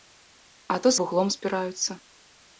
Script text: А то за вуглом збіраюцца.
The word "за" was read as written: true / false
false